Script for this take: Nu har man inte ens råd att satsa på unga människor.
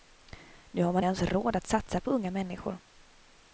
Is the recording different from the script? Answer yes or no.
yes